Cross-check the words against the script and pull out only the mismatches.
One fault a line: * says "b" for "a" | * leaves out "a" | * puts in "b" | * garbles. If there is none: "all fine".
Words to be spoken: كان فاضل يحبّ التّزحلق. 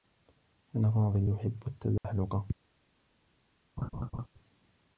all fine